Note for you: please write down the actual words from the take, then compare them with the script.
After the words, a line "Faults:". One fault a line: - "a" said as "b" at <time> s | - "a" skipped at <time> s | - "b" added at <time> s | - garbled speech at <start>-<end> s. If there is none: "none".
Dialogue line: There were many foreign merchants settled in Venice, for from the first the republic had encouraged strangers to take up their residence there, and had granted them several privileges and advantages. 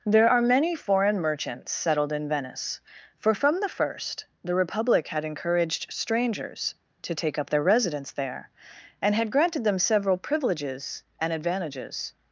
There are many foreign merchants settled in Venice, for from the first the republic had encouraged strangers to take up their residence there, and had granted them several privileges and advantages.
Faults:
- "were" said as "are" at 0.3 s